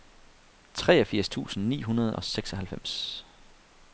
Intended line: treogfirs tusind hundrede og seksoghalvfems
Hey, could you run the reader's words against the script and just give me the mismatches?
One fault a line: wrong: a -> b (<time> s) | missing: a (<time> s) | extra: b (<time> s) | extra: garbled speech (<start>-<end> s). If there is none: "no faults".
extra: ni (1.7 s)